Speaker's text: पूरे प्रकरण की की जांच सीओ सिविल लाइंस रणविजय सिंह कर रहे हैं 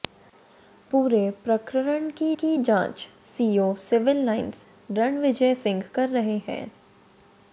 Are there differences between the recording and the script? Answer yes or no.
no